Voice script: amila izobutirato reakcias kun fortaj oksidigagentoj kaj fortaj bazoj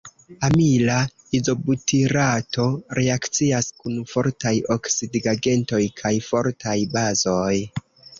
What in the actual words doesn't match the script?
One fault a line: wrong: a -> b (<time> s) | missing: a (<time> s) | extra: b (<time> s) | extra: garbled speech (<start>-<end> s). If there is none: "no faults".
no faults